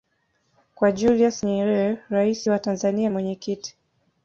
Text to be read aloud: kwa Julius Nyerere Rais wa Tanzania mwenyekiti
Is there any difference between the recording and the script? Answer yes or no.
no